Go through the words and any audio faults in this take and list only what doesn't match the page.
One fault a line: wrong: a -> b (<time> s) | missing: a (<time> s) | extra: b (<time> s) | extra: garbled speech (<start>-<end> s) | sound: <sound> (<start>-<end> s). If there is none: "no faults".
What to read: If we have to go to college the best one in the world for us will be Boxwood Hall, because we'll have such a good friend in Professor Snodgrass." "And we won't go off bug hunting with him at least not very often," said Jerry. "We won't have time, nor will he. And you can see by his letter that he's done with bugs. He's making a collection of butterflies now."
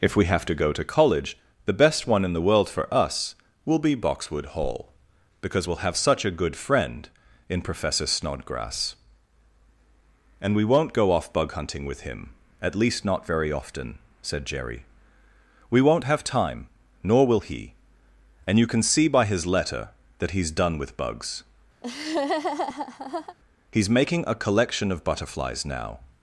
sound: laugh (21.8-23.4 s)